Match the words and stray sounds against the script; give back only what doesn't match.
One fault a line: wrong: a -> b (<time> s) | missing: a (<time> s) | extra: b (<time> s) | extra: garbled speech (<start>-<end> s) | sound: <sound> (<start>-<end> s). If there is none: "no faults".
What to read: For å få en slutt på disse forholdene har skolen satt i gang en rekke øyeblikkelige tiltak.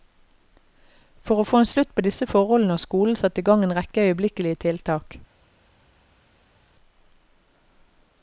no faults